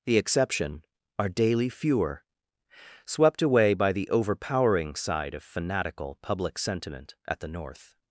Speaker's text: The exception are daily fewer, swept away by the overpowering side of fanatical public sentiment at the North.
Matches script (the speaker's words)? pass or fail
pass